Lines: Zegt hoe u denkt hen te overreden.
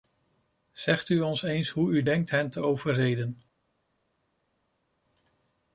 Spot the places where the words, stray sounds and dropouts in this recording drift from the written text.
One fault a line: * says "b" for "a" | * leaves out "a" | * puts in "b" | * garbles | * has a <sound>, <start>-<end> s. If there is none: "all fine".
* puts in "u ons eens"